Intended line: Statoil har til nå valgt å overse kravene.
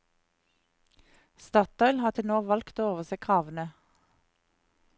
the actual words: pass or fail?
pass